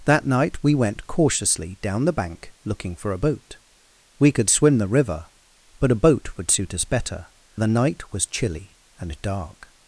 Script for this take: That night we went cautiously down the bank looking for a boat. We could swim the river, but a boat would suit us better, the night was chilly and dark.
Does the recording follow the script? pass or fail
pass